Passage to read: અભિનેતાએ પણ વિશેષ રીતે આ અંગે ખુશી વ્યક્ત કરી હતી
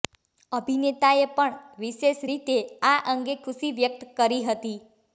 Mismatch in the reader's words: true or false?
false